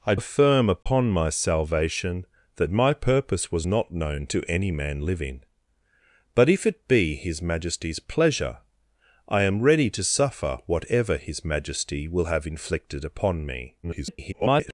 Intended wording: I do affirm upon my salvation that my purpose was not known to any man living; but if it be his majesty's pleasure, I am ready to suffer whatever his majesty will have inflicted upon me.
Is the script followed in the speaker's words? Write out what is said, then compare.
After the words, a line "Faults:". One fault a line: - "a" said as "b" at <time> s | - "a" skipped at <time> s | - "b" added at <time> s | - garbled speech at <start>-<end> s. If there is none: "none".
I affirm upon my salvation that my purpose was not known to any man living; but if it be his majesty's pleasure, I am ready to suffer whatever his majesty will have inflicted upon me. [garbled]
Faults:
- "do" skipped at 0.1 s
- garbled speech at 13.8-14.7 s